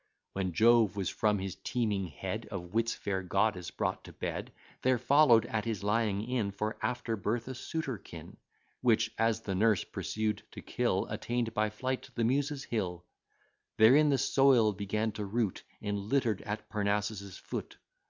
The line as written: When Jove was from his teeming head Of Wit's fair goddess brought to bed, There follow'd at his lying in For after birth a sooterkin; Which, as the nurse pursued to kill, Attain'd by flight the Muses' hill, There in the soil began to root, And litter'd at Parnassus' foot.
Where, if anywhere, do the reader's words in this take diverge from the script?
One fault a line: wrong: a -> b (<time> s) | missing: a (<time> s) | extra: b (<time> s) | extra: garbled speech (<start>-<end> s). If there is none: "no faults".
no faults